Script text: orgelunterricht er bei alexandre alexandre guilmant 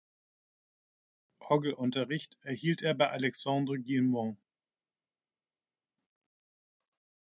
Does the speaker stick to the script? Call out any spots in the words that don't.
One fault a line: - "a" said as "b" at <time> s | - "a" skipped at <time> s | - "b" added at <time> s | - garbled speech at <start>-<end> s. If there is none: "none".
- "erhielt" added at 2.4 s
- "alexandre" skipped at 3.8 s